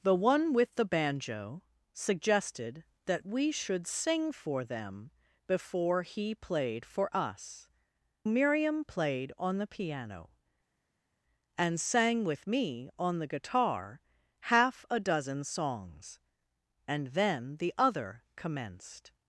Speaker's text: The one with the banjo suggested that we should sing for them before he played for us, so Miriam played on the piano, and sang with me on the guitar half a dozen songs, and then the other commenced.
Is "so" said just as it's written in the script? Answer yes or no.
no